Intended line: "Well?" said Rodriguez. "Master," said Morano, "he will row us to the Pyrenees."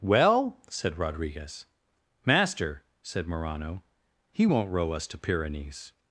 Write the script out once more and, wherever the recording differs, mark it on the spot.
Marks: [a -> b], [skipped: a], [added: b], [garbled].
"Well?" said Rodriguez. "Master," said Morano, "he [will -> won't] row us to [skipped: the] Pyrenees."